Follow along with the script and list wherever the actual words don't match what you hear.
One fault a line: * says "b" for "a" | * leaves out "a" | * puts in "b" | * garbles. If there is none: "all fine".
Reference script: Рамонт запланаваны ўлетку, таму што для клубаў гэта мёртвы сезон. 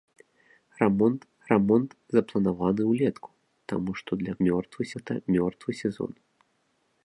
* puts in "рамонт"
* says "мёртвы" for "клубаў"